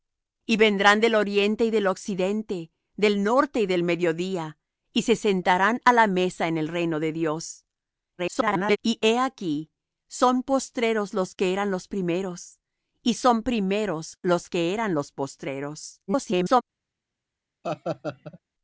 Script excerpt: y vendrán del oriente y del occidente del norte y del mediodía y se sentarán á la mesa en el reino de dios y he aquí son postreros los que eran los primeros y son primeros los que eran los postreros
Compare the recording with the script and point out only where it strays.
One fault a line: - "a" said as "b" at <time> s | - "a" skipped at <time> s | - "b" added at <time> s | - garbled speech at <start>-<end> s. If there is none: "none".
- garbled speech at 8.2-8.8 s
- garbled speech at 16.1-16.6 s